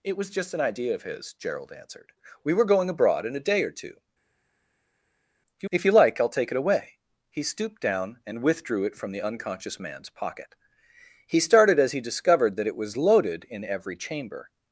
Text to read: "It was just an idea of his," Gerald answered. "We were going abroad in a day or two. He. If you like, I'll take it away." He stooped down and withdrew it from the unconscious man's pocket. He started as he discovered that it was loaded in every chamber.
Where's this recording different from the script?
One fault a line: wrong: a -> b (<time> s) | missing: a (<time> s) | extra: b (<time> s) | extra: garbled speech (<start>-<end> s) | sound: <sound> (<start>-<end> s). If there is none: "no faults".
no faults